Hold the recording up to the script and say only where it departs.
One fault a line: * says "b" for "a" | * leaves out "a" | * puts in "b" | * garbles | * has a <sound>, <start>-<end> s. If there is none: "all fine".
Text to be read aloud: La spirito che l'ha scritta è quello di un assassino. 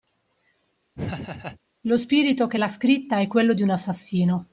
* has a laugh, 0.9-1.6 s
* says "Lo" for "La"